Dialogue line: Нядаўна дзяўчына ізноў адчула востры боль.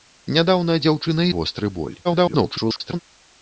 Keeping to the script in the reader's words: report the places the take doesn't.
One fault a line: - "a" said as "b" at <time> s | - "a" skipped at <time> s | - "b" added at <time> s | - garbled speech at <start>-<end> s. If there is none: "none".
- "ізноў адчула" skipped at 1.3 s
- garbled speech at 2.0-3.0 s